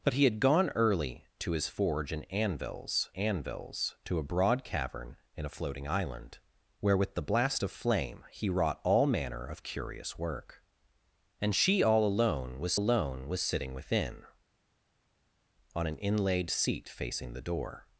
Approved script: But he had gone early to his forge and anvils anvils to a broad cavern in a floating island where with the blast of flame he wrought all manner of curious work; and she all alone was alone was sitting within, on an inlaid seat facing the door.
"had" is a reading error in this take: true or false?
false